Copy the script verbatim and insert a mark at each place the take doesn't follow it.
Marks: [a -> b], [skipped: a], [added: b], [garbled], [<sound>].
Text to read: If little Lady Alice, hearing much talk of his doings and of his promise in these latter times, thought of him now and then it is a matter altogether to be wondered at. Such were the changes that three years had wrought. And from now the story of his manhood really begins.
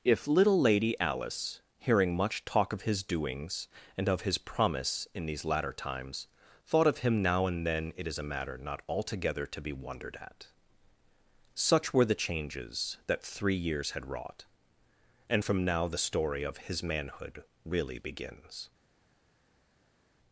If little Lady Alice, hearing much talk of his doings and of his promise in these latter times, thought of him now and then it is a matter [added: not] altogether to be wondered at. Such were the changes that three years had wrought. And from now the story of his manhood really begins.